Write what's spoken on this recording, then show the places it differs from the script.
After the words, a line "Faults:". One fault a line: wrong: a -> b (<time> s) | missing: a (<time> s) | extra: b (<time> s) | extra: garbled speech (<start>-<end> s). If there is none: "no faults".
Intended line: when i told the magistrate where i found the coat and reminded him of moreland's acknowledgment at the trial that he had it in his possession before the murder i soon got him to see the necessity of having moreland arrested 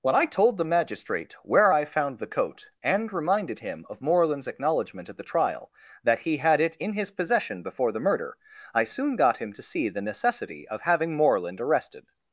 when i told the magistrate where i found the coat and reminded him of moreland's acknowledgment at the trial that he had it in his possession before the murder i soon got him to see the necessity of having moreland arrested
Faults:
no faults